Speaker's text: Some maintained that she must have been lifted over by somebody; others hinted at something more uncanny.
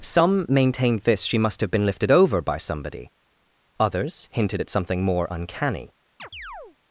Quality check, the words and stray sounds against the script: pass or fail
fail